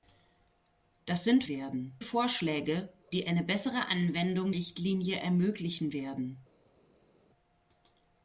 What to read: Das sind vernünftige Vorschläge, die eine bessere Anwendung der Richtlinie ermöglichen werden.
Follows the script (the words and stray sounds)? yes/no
no